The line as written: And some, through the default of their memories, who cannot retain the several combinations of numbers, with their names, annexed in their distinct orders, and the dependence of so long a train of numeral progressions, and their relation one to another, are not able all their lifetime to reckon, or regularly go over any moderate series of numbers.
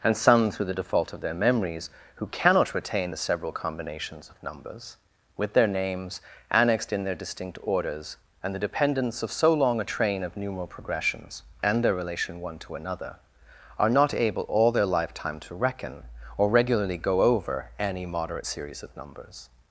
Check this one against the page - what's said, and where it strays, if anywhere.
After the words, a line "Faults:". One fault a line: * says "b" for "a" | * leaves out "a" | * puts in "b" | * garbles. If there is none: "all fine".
And some, through the default of their memories, who cannot retain the several combinations of numbers, with their names, annexed in their distinct orders, and the dependence of so long a train of numeral progressions, and their relation one to another, are not able all their lifetime to reckon, or regularly go over any moderate series of numbers.
Faults:
all fine